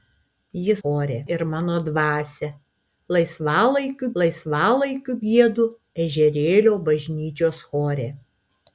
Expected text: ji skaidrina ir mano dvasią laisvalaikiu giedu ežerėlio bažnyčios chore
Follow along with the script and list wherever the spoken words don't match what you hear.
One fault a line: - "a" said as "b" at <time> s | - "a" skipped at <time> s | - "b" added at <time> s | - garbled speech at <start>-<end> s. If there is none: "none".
- "skaidrina" said as "chore" at 0.8 s
- "laisvalaikiu" added at 4.2 s